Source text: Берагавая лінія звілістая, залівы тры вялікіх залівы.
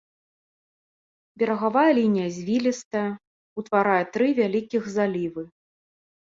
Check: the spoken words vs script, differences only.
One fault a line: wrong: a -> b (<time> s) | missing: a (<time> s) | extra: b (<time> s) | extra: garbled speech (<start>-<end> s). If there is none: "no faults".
wrong: залівы -> утварае (3.6 s)